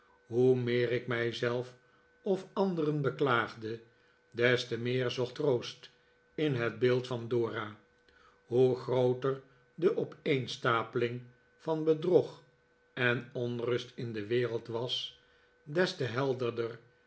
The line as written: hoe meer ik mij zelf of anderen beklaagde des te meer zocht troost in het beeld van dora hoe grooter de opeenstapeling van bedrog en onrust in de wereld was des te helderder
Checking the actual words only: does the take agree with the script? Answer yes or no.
yes